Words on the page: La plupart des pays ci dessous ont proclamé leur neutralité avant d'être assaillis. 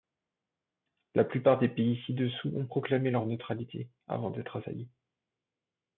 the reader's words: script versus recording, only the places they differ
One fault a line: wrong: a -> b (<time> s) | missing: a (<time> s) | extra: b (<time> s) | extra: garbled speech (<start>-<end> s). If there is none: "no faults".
no faults